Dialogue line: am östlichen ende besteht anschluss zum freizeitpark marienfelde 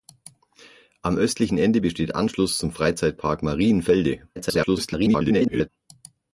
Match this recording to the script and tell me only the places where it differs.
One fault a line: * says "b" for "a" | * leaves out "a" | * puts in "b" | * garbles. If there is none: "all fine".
* garbles